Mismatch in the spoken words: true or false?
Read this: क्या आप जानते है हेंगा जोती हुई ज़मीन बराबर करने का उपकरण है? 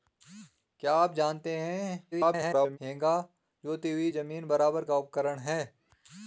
true